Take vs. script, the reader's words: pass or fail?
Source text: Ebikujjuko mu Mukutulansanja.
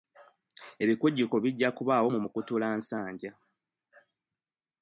fail